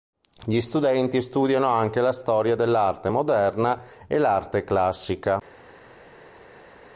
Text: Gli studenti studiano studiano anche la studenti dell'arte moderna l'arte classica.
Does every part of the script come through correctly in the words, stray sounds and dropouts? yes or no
no